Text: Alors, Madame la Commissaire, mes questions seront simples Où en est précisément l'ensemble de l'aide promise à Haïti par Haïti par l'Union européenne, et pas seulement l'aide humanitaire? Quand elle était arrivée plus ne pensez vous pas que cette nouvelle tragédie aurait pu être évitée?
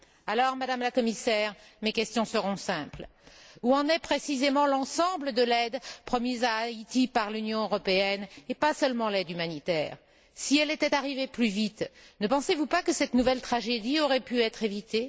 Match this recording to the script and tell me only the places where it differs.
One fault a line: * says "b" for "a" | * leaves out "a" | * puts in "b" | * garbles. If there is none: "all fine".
* leaves out "Haïti par"
* says "Si" for "Quand"
* puts in "vite"